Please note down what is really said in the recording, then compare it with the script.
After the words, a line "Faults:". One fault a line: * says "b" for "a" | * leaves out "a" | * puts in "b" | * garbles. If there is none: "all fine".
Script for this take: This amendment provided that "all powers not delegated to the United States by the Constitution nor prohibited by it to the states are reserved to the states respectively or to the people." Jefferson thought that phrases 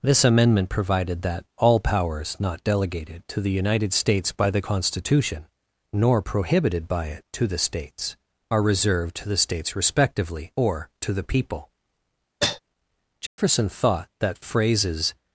This amendment provided that "all powers not delegated to the United States by the Constitution nor prohibited by it to the states are reserved to the states respectively or to the people." Jefferson thought that phrases
Faults:
all fine